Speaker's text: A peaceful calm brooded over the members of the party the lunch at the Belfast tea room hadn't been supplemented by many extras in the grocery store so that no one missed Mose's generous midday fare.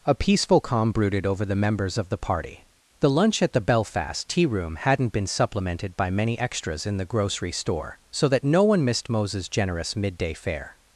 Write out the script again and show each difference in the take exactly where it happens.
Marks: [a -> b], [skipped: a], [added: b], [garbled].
A peaceful calm brooded over the members of the party the lunch at the Belfast tea room hadn't been supplemented by many extras in the grocery store so that no one missed Mose's generous midday fare.